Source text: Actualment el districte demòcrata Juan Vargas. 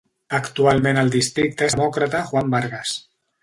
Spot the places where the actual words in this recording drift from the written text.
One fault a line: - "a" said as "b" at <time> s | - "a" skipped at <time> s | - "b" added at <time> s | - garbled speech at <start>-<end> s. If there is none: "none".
none